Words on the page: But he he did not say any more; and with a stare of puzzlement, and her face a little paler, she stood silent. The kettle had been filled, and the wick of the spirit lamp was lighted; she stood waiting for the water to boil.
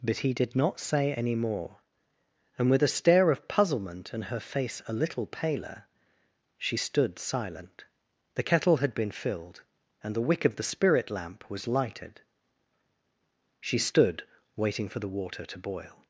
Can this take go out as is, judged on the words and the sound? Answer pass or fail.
fail